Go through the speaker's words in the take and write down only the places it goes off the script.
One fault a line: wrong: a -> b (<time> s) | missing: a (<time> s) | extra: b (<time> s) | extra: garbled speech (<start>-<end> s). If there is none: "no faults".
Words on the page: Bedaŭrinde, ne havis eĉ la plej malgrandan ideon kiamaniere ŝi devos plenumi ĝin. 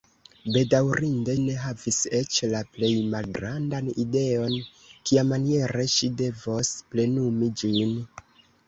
no faults